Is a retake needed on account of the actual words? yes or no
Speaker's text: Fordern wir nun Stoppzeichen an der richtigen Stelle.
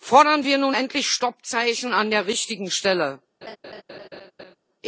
yes